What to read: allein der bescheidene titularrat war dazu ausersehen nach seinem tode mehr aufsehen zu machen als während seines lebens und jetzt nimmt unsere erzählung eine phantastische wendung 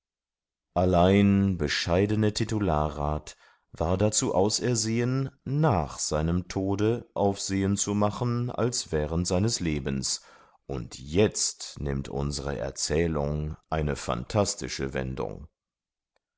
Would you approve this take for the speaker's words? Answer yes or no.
no